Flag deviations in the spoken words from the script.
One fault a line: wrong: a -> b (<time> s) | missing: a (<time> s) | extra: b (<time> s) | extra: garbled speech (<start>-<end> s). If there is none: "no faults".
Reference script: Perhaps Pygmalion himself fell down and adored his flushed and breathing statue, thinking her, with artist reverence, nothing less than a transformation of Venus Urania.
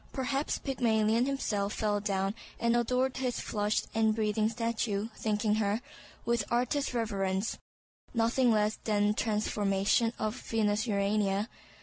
no faults